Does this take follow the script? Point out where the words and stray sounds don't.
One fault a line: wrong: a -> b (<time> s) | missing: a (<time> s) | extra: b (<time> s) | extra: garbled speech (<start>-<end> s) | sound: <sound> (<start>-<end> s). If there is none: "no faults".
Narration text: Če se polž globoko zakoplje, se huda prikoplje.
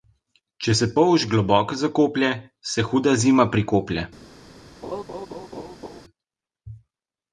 extra: zima (3.2 s)
sound: laugh (4.8-6.0 s)